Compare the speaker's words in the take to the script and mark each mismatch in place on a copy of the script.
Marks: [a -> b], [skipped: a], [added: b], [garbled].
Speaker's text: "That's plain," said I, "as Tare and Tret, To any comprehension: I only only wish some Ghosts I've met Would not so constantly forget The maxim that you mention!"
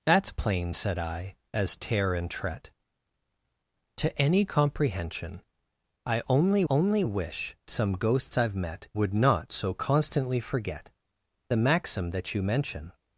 "That's plain," said I, "as Tare and Tret, To any comprehension: I only only wish some Ghosts I've met Would not so constantly forget The maxim that you mention!"